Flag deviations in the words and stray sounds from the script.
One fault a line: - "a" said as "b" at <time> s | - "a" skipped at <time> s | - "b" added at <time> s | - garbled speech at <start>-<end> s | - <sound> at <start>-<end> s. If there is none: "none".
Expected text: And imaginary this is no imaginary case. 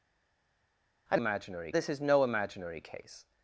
none